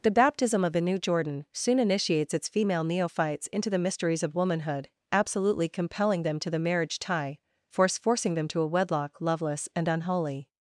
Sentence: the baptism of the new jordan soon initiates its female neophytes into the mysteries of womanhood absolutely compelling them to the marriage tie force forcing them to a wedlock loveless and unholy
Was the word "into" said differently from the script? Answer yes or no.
no